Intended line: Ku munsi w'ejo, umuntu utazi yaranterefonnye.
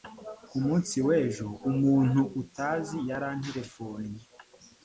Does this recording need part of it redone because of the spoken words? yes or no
no